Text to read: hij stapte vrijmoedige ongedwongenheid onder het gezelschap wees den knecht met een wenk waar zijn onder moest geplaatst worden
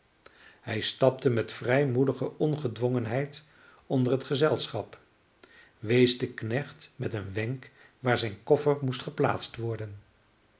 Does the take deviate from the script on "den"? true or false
false